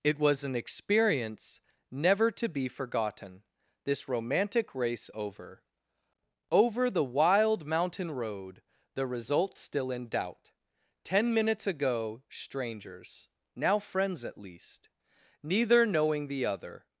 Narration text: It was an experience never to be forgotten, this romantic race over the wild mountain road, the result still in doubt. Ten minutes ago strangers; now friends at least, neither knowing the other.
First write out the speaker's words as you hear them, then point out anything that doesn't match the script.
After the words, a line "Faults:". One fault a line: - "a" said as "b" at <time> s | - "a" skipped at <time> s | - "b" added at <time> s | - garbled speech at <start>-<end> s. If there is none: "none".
It was an experience never to be forgotten, this romantic race over over the wild mountain road, the result still in doubt. Ten minutes ago strangers; now friends at least, neither knowing the other.
Faults:
- "over" added at 6.5 s